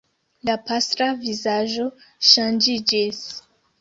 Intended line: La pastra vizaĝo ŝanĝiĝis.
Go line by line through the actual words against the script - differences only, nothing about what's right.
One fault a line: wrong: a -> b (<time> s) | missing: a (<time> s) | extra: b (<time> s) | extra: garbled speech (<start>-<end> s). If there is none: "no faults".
no faults